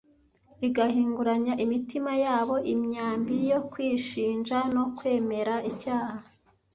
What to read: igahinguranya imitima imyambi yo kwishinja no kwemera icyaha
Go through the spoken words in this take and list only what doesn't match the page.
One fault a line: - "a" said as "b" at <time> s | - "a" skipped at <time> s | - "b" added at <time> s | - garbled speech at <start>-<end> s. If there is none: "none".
- "yabo" added at 2.2 s